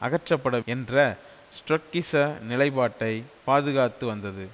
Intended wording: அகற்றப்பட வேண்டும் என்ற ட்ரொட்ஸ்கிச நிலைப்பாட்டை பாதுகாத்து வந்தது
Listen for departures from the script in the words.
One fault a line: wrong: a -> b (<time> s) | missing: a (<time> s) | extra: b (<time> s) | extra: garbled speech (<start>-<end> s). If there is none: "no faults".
missing: வேண்டும் (0.6 s)